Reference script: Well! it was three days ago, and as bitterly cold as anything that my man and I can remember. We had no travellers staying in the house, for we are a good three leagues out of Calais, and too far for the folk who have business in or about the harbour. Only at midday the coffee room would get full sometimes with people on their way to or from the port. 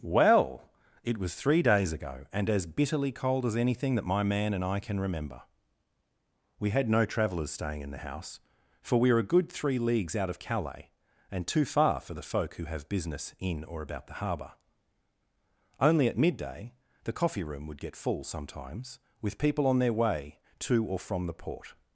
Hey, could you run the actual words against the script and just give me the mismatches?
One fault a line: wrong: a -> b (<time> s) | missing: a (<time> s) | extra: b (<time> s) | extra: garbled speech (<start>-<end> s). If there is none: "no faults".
no faults